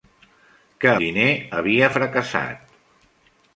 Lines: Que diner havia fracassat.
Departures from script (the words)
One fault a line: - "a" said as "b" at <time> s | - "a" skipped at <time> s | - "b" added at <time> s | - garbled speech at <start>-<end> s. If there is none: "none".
none